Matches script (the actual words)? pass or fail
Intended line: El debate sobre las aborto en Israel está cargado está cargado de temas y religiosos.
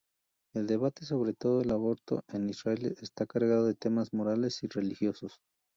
fail